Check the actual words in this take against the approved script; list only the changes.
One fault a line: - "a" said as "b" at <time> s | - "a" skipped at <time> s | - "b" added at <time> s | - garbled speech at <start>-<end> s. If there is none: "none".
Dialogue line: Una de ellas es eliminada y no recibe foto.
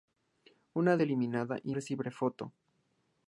- "de ellas es" skipped at 1.0 s
- "no" skipped at 1.7 s